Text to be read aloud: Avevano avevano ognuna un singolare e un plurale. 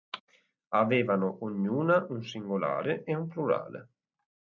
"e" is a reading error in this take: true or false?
false